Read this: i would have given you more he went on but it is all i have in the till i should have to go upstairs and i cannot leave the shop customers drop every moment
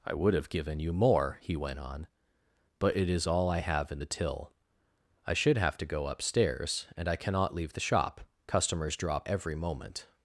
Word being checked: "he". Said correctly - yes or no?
yes